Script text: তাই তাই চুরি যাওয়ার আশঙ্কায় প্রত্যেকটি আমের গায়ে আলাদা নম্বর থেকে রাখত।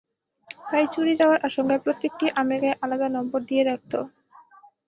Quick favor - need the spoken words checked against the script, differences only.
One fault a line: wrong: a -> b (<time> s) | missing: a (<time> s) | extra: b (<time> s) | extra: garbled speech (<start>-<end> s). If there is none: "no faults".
missing: তাই (0.8 s)
wrong: থেকে -> দিয়ে (3.5 s)